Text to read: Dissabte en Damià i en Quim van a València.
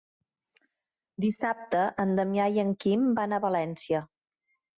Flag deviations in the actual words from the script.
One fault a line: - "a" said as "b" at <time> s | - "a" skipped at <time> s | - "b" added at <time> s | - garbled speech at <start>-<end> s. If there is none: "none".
none